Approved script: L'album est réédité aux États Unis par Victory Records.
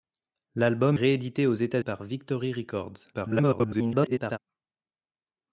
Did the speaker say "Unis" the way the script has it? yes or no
no